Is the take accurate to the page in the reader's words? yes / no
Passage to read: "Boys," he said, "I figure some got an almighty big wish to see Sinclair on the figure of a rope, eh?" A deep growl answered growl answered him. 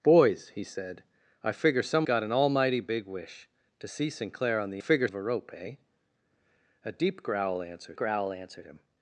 yes